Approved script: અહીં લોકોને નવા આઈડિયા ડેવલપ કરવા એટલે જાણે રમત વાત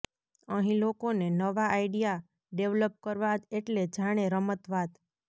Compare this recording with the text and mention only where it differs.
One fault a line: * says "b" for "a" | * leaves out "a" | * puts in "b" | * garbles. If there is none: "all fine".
all fine